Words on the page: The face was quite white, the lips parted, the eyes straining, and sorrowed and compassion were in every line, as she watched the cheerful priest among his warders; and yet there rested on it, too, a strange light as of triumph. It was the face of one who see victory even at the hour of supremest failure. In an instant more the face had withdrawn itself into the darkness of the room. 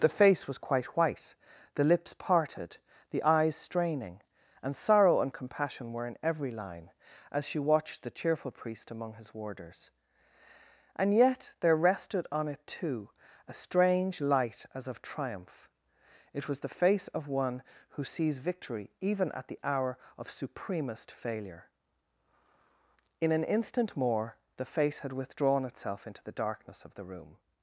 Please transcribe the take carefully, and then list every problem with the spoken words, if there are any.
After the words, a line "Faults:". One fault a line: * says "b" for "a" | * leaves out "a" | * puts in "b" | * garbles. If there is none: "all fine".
The face was quite white, the lips parted, the eyes straining, and sorrow and compassion were in every line, as she watched the cheerful priest among his warders; and yet there rested on it, too, a strange light as of triumph. It was the face of one who sees victory even at the hour of supremest failure. In an instant more the face had withdrawn itself into the darkness of the room.
Faults:
* says "sorrow" for "sorrowed"
* says "sees" for "see"